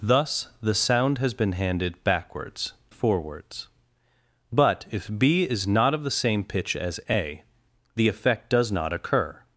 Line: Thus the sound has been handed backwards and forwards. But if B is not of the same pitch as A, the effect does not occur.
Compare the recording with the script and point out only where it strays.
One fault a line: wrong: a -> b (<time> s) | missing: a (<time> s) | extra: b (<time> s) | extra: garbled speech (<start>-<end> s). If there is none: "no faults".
missing: and (2.7 s)